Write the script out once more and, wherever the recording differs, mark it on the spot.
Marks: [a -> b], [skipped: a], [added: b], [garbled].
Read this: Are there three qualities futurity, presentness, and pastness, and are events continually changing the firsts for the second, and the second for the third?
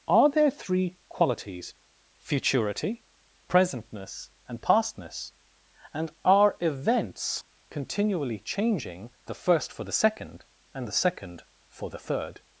Are there three qualities futurity, presentness, and pastness, and are events continually changing the [firsts -> first] for the second, and the second for the third?